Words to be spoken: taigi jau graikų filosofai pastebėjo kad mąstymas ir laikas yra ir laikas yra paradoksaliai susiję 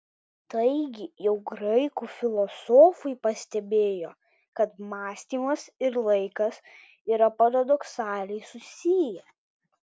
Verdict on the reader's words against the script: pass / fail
fail